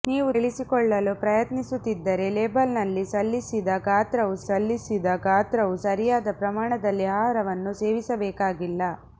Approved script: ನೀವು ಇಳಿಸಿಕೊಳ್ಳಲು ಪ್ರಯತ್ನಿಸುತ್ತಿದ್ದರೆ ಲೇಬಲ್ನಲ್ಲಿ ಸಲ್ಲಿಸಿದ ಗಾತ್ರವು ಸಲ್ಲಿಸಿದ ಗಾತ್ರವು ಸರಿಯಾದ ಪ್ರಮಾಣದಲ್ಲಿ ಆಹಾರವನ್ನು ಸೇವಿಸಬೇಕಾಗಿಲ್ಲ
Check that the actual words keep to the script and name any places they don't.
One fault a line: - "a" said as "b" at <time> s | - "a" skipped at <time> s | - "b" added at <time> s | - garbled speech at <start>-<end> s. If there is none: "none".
none